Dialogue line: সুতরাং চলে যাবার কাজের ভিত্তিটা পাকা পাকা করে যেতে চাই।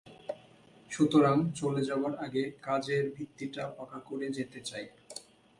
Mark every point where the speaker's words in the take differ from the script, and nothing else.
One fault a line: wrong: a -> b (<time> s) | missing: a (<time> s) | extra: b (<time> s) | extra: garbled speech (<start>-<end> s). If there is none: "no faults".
extra: আগে (2.2 s)
missing: পাকা (4.0 s)